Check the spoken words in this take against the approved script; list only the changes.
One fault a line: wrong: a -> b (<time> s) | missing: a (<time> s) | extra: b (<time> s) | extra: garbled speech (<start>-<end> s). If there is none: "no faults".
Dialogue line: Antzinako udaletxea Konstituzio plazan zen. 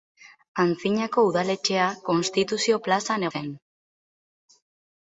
no faults